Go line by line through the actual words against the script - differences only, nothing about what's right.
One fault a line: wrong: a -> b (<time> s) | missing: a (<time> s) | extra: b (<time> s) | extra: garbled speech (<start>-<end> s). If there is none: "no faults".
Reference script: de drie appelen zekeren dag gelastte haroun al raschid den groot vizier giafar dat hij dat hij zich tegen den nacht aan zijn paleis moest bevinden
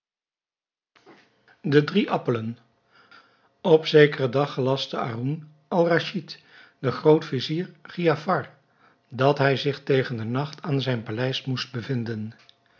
extra: op (3.6 s)
missing: dat hij (9.6 s)